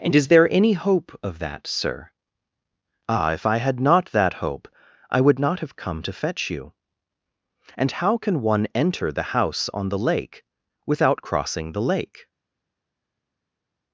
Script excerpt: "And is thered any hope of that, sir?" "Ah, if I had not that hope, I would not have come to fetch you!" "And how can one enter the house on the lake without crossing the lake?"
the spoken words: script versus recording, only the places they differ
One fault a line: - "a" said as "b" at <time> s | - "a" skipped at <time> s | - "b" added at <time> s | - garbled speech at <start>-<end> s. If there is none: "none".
- "thered" said as "there" at 0.3 s